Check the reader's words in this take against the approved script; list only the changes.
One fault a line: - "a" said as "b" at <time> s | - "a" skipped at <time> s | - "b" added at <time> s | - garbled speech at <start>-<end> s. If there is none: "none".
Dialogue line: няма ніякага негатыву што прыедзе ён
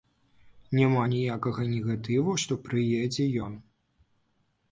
none